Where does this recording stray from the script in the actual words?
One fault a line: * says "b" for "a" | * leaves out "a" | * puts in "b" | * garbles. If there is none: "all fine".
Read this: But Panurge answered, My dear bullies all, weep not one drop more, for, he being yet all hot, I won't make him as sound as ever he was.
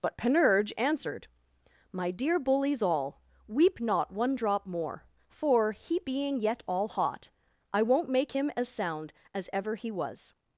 all fine